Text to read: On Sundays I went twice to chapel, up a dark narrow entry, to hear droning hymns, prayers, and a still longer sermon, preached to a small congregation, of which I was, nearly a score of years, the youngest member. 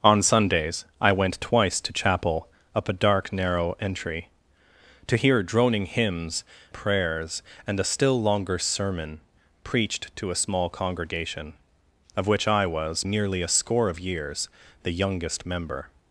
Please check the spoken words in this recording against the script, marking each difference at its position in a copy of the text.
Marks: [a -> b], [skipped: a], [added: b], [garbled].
On Sundays I went twice to chapel, up a dark narrow entry, to hear droning hymns, prayers, and a still longer sermon, preached to a small congregation, of which I was, nearly a score of years, the youngest member.